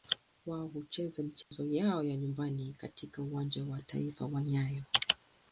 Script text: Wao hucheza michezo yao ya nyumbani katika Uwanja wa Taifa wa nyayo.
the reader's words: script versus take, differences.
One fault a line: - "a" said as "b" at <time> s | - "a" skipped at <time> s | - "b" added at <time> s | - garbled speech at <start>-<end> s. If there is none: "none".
none